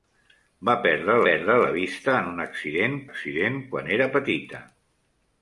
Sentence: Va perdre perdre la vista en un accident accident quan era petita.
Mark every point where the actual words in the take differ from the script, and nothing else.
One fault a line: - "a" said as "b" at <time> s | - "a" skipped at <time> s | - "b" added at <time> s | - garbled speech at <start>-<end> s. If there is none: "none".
none